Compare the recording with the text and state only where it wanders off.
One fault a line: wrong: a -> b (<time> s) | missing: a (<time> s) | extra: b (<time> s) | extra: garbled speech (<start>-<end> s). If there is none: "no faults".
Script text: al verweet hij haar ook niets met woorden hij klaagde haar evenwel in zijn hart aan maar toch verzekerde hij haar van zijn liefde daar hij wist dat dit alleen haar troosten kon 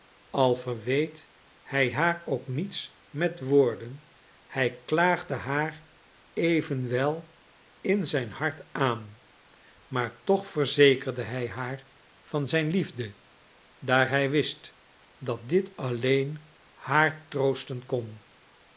no faults